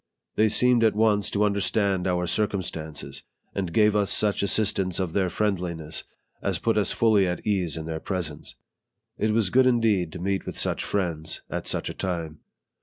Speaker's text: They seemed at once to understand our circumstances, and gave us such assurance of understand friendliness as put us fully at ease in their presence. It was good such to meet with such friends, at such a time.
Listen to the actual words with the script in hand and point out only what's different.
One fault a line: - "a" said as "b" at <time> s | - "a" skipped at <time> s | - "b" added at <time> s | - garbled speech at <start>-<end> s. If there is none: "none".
- "understand" said as "their" at 5.1 s
- "such" said as "indeed" at 9.7 s